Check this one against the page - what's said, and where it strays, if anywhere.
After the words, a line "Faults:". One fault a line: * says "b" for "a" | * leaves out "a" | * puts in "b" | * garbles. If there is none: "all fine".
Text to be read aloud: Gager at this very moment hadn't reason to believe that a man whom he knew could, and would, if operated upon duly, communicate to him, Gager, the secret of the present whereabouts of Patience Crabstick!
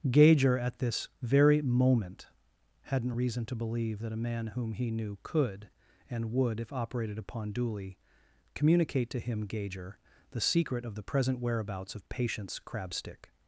Gager at this very moment hadn't reason to believe that a man whom he knew could, and would, if operated upon duly, communicate to him, Gager, the secret of the present whereabouts of Patience Crabstick!
Faults:
all fine